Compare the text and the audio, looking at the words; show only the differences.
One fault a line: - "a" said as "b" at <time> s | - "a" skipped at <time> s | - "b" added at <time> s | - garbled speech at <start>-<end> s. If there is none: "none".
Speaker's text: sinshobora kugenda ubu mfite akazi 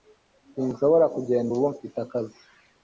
none